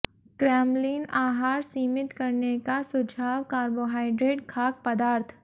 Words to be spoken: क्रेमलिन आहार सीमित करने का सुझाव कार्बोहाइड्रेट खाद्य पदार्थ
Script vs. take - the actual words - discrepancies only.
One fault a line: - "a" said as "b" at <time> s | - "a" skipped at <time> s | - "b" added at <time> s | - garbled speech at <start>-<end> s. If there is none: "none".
none